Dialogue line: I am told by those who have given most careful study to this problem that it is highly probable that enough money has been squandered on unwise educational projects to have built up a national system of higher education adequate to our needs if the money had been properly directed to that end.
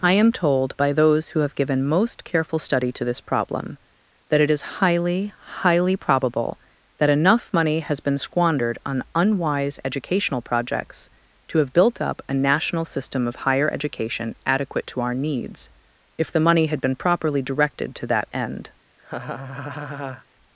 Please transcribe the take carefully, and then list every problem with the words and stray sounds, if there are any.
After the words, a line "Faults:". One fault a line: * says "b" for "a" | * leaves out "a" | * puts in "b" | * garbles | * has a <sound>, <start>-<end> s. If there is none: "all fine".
I am told by those who have given most careful study to this problem that it is highly highly probable that enough money has been squandered on unwise educational projects to have built up a national system of higher education adequate to our needs if the money had been properly directed to that end.
Faults:
* puts in "highly"
* has a laugh, 19.0-20.3 s